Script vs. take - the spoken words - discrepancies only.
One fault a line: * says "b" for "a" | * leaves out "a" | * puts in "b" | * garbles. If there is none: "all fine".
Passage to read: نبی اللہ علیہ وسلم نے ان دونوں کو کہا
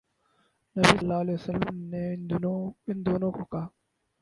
all fine